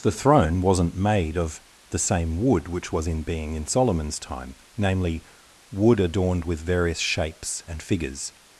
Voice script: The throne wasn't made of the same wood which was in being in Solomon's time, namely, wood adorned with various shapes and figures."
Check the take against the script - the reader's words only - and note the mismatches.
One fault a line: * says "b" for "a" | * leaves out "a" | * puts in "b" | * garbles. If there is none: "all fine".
all fine